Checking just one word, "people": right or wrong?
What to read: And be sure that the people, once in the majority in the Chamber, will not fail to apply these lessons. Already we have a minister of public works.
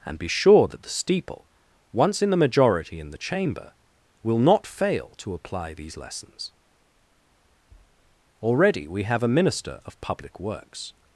wrong